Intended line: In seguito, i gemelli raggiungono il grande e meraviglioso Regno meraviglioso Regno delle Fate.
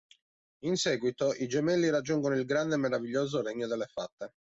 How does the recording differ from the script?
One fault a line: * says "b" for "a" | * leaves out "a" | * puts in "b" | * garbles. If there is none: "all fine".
* leaves out "meraviglioso Regno"